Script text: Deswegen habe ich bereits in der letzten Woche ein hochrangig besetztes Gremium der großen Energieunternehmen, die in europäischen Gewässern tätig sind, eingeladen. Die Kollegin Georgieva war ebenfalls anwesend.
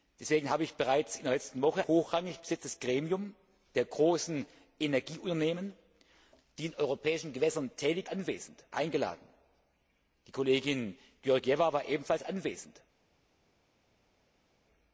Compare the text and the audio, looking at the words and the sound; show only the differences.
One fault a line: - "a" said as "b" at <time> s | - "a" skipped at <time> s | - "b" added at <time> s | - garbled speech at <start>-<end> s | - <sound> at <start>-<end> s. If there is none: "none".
- "ein" skipped at 1.8 s
- "sind" said as "anwesend" at 8.0 s